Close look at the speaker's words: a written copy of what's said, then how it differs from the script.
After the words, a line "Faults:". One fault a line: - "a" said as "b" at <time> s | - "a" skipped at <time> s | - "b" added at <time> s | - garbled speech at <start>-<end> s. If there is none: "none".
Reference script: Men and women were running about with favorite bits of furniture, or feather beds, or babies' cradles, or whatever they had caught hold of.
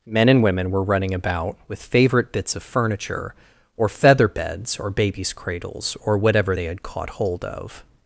Men and women were running about with favorite bits of furniture, or feather beds, or babies' cradles, or whatever they had caught hold of.
Faults:
none